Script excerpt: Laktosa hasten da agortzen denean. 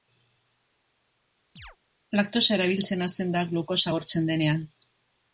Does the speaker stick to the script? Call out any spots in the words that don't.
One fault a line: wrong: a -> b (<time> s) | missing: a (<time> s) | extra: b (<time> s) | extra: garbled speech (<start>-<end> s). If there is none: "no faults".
extra: erabiltzen (2.6 s)
extra: glukosa (3.5 s)